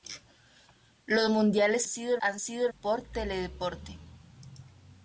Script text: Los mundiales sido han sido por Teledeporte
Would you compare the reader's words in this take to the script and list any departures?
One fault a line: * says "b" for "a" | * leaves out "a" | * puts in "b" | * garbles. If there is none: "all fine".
all fine